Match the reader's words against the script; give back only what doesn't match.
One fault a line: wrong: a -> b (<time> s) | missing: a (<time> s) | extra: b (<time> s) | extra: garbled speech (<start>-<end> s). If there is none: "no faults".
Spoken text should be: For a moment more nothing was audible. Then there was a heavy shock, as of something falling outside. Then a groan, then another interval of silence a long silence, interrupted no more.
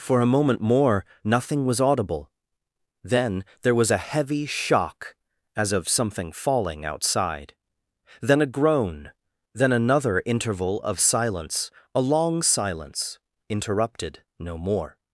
no faults